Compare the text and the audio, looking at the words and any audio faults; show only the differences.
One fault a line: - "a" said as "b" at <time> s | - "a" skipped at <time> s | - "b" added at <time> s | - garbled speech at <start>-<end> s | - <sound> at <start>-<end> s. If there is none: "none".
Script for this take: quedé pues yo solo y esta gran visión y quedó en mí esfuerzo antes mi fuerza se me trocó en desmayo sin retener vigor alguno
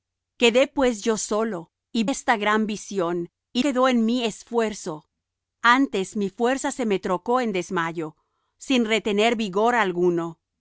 none